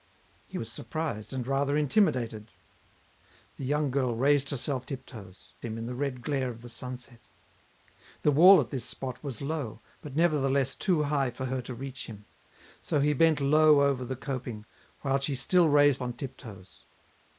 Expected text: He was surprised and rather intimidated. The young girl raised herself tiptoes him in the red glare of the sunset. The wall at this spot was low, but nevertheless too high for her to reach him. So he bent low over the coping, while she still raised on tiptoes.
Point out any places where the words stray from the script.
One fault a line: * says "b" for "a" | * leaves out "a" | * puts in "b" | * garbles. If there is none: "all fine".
all fine